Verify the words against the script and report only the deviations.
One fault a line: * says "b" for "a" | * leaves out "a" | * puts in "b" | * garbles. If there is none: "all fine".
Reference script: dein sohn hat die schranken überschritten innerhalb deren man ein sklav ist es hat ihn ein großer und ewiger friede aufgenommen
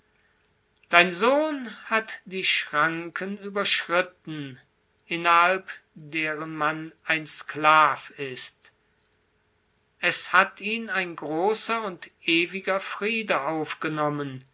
all fine